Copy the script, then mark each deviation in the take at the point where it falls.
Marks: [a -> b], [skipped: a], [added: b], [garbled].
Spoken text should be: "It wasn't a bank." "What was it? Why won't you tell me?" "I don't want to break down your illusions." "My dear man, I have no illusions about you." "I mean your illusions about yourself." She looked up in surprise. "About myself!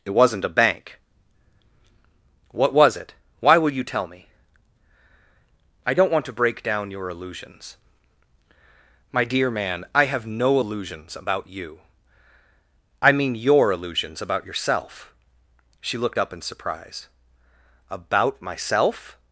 "It wasn't a bank." "What was it? Why [won't -> will] you tell me?" "I don't want to break down your illusions." "My dear man, I have no illusions about you." "I mean your illusions about yourself." She looked up in surprise. "About myself!